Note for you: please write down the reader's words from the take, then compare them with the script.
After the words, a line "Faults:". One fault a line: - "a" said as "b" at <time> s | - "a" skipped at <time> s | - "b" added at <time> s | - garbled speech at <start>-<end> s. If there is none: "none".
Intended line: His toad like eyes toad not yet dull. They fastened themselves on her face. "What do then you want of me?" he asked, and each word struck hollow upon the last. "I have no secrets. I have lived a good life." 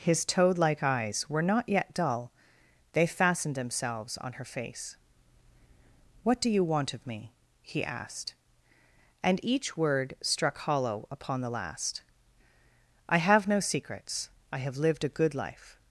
His toad like eyes were not yet dull. They fastened themselves on her face. "What do you want of me?" he asked, and each word struck hollow upon the last. "I have no secrets. I have lived a good life."
Faults:
- "toad" said as "were" at 1.3 s
- "then" skipped at 6.5 s